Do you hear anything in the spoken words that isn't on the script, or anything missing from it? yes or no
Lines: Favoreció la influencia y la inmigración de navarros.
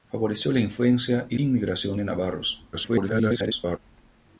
yes